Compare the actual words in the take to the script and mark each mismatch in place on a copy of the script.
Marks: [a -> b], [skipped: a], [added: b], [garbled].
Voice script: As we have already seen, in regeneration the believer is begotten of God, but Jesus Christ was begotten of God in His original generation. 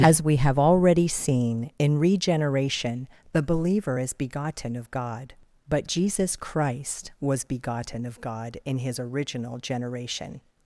As we have already seen, in regeneration the believer is begotten of God, but Jesus Christ was begotten of God in His original generation.